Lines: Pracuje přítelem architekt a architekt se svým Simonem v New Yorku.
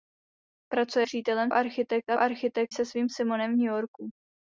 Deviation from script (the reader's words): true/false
false